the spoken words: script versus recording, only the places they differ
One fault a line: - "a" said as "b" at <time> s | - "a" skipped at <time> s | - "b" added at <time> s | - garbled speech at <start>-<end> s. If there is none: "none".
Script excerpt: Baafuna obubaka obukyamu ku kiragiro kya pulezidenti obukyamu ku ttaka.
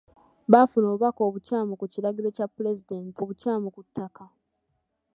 none